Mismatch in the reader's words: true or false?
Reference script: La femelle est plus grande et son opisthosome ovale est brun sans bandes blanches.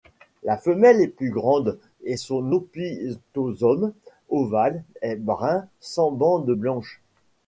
false